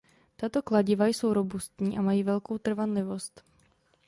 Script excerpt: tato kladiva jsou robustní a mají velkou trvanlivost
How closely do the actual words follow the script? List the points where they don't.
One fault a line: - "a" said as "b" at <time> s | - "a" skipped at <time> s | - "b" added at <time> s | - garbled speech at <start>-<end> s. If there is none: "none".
none